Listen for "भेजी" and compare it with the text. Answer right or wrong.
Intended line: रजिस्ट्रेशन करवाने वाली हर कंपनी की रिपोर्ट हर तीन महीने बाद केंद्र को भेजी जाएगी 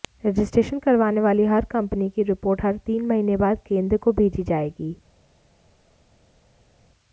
right